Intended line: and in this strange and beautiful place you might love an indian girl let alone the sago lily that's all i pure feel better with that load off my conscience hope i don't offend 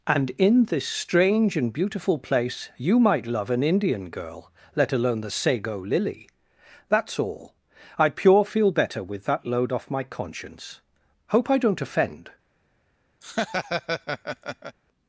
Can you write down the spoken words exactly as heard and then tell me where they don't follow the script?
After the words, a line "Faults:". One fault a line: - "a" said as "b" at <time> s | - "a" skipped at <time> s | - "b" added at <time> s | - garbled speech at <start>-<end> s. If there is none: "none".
and in this strange and beautiful place you might love an indian girl let alone the sago lily that's all i pure feel better with that load off my conscience hope i don't offend
Faults:
none